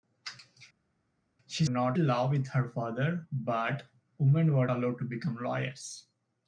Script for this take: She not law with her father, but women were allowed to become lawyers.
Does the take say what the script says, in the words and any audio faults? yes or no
yes